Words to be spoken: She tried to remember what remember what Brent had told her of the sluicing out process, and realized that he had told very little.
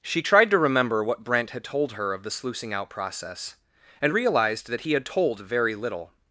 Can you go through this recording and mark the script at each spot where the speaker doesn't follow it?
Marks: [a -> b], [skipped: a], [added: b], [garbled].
She tried to remember what [skipped: remember what] Brent had told her of the sluicing out process, and realized that he had told very little.